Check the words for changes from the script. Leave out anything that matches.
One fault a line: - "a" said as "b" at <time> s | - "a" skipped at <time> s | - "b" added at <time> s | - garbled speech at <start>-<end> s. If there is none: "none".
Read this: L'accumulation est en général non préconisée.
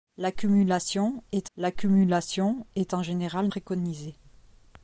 - "l'accumulation est" added at 1.6 s
- "non" skipped at 3.5 s